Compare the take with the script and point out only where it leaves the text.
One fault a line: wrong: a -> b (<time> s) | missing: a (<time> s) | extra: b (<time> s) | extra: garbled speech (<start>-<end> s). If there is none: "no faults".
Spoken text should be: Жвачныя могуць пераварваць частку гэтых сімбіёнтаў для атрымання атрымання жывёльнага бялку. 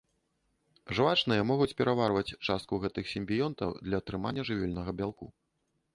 missing: атрымання (4.4 s)